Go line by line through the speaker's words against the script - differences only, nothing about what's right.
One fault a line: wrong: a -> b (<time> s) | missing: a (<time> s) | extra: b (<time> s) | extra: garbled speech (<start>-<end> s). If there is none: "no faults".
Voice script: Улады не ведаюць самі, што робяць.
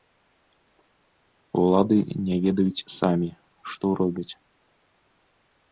no faults